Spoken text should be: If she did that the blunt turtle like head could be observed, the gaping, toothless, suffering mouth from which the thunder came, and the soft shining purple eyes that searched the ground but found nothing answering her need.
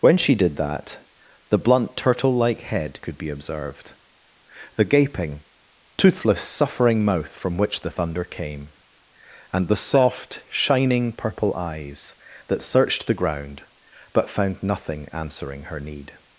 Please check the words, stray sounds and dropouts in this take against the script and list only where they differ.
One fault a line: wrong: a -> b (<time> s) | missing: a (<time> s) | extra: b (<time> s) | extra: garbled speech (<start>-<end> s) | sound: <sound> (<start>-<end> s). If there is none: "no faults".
wrong: If -> When (0.0 s)